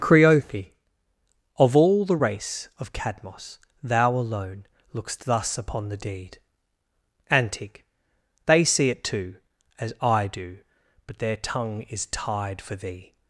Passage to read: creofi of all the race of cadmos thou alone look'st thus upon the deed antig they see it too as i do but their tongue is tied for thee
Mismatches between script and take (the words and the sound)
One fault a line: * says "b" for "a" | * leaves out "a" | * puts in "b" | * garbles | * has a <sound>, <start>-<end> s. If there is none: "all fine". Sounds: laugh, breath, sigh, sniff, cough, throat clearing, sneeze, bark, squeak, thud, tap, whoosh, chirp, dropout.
all fine